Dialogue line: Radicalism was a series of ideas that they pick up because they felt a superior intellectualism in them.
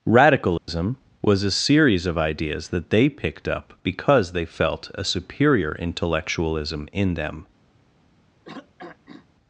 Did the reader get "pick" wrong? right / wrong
wrong